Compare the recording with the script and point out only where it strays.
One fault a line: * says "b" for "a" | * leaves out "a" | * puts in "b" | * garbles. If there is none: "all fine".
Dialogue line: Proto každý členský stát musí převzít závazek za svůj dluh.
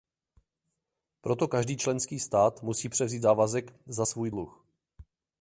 all fine